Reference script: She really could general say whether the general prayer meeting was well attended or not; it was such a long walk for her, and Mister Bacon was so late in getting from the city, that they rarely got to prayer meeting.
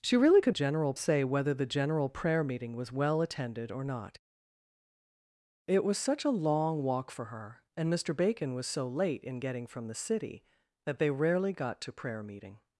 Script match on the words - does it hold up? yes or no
yes